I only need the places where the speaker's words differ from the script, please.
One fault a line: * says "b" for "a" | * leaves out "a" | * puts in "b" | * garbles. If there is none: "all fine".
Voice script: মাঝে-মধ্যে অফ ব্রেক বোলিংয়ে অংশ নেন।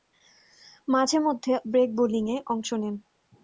* leaves out "অফ"